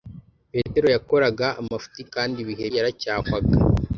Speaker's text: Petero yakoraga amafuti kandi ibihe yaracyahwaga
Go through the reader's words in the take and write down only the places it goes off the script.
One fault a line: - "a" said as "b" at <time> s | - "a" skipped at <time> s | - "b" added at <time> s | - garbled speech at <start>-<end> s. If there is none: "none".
none